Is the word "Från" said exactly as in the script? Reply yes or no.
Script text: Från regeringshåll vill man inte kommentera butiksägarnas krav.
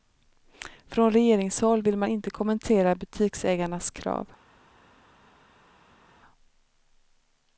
yes